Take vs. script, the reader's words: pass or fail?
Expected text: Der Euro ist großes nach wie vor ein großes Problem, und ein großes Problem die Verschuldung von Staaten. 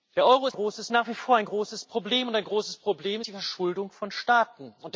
pass